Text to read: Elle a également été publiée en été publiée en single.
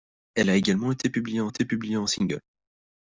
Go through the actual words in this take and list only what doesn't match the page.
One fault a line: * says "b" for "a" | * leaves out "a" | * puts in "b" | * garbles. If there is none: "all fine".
all fine